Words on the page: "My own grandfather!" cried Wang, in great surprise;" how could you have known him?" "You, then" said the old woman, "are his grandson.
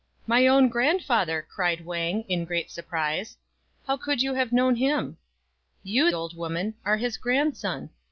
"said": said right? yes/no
no